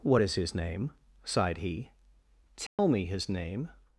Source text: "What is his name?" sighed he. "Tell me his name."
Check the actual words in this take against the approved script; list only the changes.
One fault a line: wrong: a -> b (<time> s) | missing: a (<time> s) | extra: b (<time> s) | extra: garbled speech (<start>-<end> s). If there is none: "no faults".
no faults